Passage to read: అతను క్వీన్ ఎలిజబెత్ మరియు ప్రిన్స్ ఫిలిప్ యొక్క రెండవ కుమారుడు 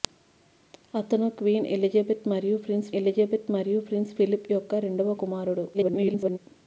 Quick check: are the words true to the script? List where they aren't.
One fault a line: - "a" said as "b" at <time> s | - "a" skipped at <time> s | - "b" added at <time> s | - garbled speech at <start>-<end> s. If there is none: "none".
- "ఎలిజబెత్ మరియు ప్రిన్స్" added at 3.0 s
- garbled speech at 5.7-6.4 s